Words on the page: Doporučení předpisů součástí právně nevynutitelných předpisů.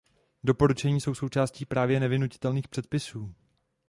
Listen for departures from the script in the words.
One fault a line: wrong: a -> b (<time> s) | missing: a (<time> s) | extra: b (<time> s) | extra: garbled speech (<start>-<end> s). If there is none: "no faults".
wrong: předpisů -> jsou (1.0 s)